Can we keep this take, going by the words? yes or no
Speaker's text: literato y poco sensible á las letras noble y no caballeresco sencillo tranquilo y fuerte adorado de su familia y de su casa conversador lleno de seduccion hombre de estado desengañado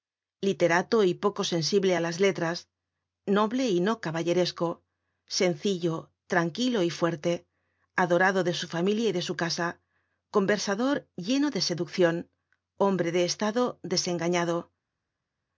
yes